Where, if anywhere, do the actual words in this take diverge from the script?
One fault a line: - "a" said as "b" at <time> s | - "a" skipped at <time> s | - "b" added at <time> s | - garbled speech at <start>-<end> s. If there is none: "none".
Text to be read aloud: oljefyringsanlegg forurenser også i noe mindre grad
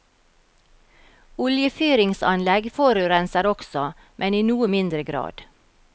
- "men" added at 4.2 s